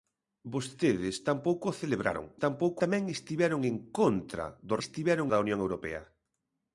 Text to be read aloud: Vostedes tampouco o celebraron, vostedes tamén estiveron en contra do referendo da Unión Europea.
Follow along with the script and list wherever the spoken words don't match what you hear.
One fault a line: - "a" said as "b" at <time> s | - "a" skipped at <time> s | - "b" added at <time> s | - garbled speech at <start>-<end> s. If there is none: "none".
- "vostedes" said as "tampouco" at 2.4 s
- "referendo" said as "estiveron" at 4.8 s